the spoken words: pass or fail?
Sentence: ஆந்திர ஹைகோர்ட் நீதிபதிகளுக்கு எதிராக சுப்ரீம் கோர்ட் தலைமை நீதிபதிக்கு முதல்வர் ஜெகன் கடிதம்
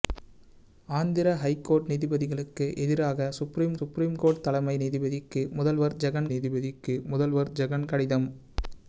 fail